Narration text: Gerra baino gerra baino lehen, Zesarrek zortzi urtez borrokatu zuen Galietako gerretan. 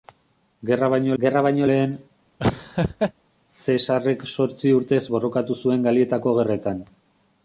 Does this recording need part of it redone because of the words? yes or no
no